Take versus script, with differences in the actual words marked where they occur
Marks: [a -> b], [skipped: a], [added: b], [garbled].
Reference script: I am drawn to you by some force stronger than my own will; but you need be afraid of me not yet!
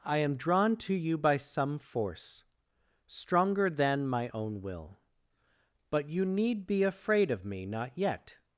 I am drawn to you by some force stronger than my own will; but you need be afraid of me not yet!